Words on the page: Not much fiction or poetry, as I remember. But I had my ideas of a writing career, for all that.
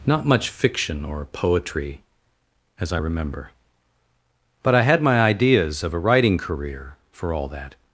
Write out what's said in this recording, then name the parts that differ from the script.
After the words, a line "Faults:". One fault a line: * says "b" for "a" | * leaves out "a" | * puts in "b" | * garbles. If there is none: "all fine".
Not much fiction or poetry, as I remember. But I had my ideas of a writing career, for all that.
Faults:
all fine